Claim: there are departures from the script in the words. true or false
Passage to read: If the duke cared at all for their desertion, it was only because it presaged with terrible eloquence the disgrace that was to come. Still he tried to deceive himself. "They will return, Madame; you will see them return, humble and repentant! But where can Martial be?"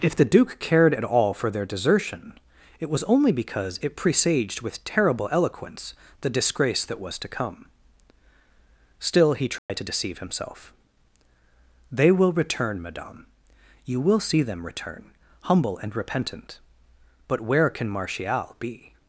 false